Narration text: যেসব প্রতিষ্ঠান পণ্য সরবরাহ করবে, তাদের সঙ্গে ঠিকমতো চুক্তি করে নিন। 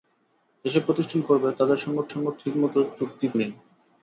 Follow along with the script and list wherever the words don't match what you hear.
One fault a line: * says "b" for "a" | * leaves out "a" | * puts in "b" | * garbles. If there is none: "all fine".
* leaves out "পণ্য সরবরাহ"
* puts in "সঙ্গে"
* leaves out "করে"